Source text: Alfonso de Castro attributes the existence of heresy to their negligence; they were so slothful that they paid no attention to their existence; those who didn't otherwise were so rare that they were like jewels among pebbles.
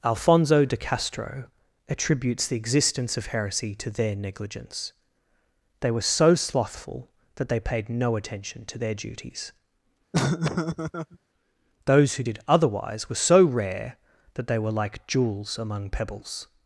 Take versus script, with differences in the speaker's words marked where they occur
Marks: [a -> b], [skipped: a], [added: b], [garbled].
Alfonso de Castro attributes the existence of heresy to their negligence; they were so slothful that they paid no attention to their [existence; -> duties] those who [didn't -> did] otherwise were so rare that they were like jewels among pebbles.